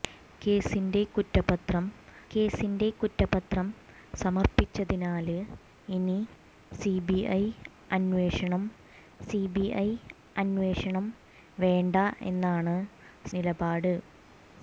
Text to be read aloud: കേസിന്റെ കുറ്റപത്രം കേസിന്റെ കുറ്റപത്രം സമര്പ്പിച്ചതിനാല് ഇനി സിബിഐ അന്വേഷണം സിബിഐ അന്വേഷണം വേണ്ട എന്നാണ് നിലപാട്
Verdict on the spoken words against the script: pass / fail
pass